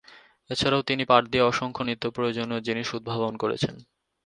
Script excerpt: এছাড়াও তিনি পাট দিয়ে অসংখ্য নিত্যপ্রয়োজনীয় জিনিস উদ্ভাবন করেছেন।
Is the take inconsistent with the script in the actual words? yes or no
no